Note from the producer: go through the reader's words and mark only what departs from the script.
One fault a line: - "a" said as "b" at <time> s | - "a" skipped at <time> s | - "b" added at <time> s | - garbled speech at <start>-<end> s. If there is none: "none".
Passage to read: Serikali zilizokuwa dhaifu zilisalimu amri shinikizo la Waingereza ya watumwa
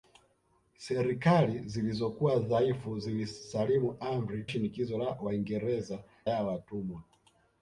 none